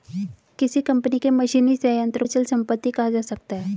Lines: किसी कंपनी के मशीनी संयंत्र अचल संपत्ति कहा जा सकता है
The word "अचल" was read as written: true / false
true